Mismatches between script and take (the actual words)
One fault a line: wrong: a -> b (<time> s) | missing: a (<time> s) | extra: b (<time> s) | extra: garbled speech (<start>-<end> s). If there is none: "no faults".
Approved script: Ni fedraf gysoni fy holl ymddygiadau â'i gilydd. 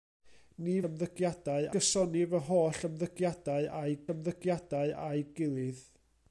wrong: fedraf -> ymddygiadau (0.9 s)
extra: ymddygiadau â'i (4.1 s)